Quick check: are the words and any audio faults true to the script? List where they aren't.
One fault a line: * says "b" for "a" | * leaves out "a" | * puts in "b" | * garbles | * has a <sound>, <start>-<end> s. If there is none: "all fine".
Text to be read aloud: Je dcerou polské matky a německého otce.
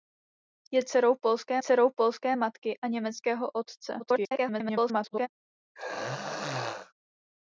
* puts in "dcerou polské"
* garbles
* has a throat clearing, 5.7-6.9 s